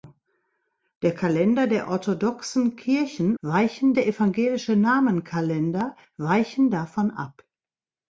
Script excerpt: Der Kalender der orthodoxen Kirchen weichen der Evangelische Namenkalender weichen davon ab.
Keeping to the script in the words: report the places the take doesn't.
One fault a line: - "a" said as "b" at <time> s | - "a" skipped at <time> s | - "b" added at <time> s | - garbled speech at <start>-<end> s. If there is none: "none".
none